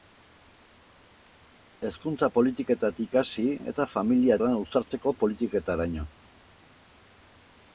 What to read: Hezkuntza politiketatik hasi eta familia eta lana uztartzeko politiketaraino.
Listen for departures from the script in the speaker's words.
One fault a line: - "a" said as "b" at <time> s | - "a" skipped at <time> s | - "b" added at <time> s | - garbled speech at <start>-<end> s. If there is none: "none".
- "eta" skipped at 4.4 s